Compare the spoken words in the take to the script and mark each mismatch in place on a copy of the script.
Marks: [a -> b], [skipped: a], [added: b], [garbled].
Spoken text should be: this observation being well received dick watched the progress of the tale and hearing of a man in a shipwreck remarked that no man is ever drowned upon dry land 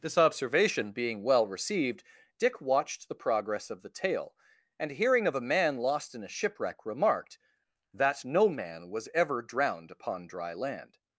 this observation being well received dick watched the progress of the tale and hearing of a man [added: lost] in a shipwreck remarked that no man [is -> was] ever drowned upon dry land